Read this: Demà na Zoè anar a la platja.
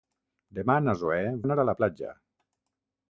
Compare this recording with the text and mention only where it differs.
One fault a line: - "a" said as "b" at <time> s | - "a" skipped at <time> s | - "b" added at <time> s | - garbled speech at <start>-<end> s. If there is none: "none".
none